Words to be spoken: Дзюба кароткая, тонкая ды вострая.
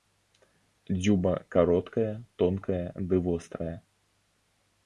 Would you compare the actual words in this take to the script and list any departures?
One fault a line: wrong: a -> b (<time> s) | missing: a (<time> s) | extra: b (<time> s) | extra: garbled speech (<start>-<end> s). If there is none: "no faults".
no faults